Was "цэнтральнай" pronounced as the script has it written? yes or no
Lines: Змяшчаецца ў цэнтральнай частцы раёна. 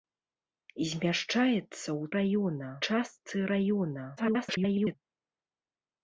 no